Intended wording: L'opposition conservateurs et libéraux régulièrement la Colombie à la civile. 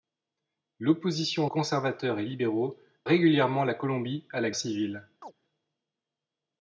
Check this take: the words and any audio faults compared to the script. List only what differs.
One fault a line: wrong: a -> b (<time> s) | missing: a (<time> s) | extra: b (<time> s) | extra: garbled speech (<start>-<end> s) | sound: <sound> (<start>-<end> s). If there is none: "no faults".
sound: chirp (5.2-5.3 s)